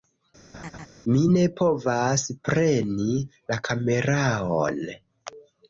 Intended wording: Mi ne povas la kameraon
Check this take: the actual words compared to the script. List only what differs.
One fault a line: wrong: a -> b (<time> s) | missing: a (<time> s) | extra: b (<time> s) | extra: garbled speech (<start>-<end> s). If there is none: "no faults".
extra: preni (2.5 s)